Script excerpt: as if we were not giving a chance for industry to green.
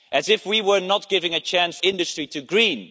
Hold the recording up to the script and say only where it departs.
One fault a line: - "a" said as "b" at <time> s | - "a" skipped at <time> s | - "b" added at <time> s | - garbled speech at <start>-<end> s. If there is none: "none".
- "for" skipped at 1.8 s